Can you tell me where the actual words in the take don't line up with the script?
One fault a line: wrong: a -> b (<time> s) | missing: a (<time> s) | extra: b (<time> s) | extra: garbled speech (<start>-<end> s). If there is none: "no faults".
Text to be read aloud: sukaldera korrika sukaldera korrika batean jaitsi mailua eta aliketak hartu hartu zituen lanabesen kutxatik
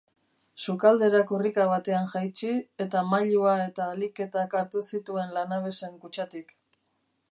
missing: sukaldera korrika (1.6 s)
extra: eta (2.8 s)
missing: hartu (4.9 s)